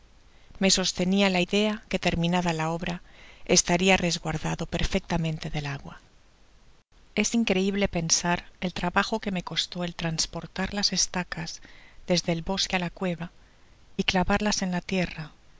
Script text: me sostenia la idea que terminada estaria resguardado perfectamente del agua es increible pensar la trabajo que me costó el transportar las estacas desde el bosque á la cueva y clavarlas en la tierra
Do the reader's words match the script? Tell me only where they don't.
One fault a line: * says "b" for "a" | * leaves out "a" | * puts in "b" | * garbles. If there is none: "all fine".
* puts in "la obra"
* says "el" for "la"